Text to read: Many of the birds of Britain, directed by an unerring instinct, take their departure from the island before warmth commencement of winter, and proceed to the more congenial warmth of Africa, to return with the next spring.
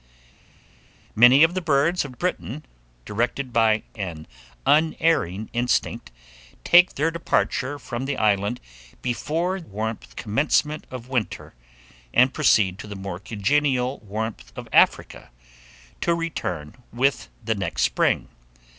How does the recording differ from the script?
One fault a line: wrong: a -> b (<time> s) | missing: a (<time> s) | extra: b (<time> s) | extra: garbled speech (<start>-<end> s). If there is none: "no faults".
no faults